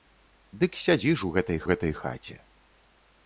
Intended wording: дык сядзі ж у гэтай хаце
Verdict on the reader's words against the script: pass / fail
fail